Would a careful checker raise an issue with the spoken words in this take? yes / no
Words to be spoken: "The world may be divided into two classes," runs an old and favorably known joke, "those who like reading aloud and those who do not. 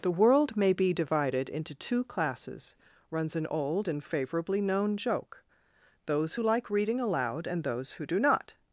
no